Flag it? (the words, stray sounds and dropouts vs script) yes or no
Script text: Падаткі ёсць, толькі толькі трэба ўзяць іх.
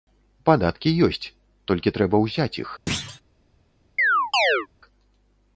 yes